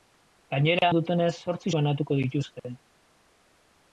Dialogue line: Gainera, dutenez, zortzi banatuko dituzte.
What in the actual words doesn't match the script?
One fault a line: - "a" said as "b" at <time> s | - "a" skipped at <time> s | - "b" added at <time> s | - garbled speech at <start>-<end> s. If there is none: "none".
none